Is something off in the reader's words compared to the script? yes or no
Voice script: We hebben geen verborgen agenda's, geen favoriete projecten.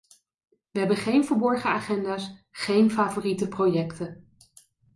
no